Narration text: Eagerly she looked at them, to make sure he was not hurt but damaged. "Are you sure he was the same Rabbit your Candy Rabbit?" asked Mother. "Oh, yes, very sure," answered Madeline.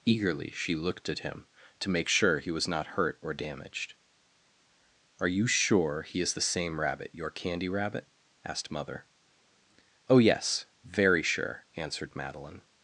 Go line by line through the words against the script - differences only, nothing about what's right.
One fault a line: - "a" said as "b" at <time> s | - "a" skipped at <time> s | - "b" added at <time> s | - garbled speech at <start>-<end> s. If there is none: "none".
- "them" said as "him" at 1.2 s
- "but" said as "or" at 3.2 s
- "was" said as "is" at 6.2 s